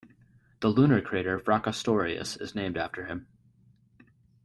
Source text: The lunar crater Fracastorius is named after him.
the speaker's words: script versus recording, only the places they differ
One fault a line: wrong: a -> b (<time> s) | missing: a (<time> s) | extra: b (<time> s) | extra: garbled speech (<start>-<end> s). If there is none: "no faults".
no faults